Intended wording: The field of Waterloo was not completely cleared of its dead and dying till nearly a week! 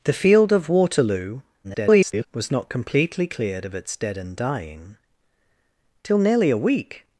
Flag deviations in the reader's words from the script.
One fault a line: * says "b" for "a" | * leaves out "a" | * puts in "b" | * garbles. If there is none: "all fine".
* garbles